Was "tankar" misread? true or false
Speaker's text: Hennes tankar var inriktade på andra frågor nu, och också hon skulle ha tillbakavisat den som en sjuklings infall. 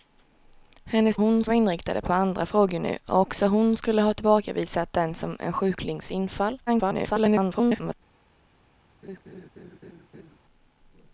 true